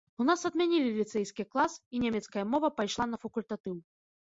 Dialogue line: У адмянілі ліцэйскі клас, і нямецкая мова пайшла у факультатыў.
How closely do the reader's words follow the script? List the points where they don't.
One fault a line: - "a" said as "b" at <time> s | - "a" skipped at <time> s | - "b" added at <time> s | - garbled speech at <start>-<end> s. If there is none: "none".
- "нас" added at 0.3 s
- "у" said as "на" at 3.1 s